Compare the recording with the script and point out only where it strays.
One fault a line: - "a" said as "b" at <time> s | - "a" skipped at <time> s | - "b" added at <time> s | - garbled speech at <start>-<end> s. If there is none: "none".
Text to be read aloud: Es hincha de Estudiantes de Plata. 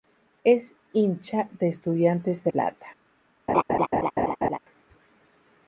none